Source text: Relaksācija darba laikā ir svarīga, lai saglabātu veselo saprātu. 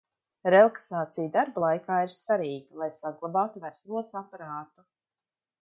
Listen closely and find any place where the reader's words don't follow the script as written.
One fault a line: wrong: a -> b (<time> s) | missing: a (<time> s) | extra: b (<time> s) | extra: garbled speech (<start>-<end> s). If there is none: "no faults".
no faults